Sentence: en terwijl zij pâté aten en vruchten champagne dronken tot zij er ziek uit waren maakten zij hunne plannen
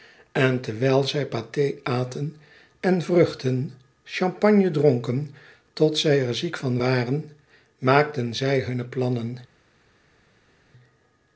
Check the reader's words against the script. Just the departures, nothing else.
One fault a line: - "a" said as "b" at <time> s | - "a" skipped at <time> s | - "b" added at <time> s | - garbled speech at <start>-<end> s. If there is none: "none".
- "uit" said as "van" at 6.6 s